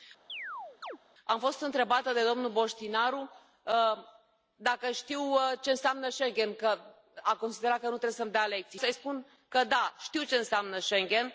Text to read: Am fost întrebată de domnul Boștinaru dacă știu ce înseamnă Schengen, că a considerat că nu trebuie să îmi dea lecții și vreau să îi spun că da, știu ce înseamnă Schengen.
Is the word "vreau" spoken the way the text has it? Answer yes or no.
no